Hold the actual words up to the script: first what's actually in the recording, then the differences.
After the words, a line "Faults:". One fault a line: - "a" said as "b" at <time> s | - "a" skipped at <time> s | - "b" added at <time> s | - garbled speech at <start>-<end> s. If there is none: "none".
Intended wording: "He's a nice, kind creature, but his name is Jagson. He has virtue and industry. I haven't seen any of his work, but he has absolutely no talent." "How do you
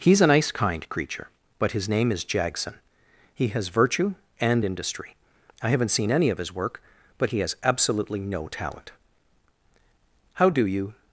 "He's a nice, kind creature, but his name is Jagson. He has virtue and industry. I haven't seen any of his work, but he has absolutely no talent." "How do you
Faults:
none